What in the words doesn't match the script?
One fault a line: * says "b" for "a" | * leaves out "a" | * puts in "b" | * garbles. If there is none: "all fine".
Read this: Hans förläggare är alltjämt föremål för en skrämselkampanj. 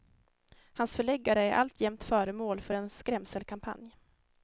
all fine